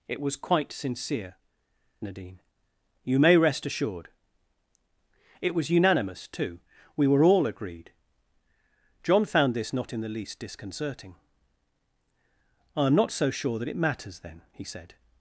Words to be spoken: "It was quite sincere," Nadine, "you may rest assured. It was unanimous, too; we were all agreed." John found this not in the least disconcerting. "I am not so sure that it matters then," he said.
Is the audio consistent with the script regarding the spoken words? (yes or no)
yes